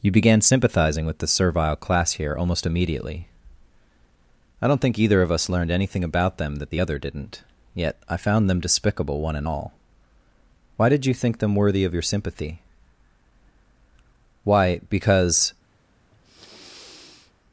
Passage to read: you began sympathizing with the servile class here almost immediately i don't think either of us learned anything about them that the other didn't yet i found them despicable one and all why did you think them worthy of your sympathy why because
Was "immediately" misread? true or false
false